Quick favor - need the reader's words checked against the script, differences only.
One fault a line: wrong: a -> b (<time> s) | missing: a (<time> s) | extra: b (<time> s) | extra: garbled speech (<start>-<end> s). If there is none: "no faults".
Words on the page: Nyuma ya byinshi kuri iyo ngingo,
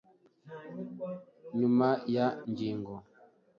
missing: byinshi kuri iyo (2.3 s)